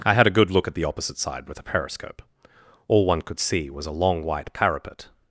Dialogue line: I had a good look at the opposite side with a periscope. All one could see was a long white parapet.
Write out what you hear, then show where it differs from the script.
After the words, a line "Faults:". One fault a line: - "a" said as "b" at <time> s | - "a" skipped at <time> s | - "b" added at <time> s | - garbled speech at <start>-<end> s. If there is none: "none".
I had a good look at the opposite side with a periscope. All one could see was a long white parapet.
Faults:
none